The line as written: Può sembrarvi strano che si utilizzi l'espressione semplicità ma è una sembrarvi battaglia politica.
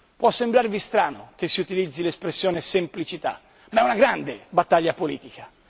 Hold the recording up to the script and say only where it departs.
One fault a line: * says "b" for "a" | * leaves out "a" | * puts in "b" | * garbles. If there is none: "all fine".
* says "grande" for "sembrarvi"